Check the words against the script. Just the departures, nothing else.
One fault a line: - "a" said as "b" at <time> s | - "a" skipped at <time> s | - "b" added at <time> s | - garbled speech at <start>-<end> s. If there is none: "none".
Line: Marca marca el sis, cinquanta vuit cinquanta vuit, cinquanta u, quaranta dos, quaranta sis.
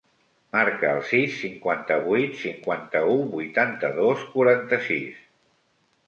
- "marca" skipped at 0.9 s
- "vuit cinquanta" skipped at 3.0 s
- "quaranta" said as "vuitanta" at 3.3 s